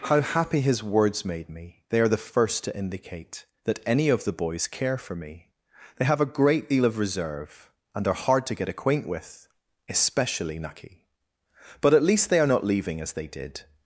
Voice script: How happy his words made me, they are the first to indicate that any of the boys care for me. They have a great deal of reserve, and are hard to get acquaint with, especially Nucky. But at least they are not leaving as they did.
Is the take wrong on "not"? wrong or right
right